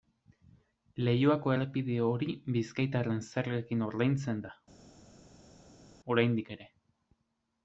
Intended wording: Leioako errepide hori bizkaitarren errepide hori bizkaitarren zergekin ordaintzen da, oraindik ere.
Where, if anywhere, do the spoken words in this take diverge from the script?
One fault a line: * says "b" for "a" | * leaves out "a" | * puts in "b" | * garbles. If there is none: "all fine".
* leaves out "errepide hori bizkaitarren"